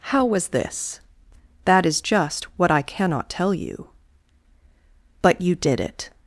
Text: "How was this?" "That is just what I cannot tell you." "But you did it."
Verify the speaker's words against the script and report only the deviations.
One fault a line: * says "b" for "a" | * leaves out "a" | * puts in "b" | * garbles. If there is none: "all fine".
all fine